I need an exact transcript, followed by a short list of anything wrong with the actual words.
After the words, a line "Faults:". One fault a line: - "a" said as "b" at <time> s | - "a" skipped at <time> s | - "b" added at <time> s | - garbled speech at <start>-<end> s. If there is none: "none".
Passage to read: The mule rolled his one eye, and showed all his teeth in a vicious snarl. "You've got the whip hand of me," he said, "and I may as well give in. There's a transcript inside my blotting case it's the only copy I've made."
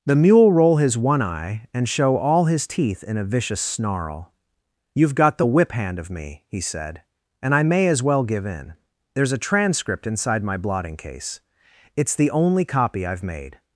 The mule roll his one eye, and show all his teeth in a vicious snarl. "You've got the whip hand of me," he said, "and I may as well give in. There's a transcript inside my blotting case it's the only copy I've made."
Faults:
- "rolled" said as "roll" at 0.5 s
- "showed" said as "show" at 1.9 s